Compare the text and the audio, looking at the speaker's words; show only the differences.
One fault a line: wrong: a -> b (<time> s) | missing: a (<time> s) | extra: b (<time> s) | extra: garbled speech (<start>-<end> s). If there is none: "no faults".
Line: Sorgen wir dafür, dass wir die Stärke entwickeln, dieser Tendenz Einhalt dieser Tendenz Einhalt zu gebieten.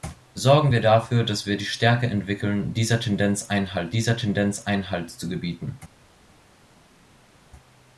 no faults